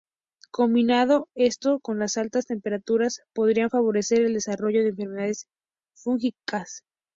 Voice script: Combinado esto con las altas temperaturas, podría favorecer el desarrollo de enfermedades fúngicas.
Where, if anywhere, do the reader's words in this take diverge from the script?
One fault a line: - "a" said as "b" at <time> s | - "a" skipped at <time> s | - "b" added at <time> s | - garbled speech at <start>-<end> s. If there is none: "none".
none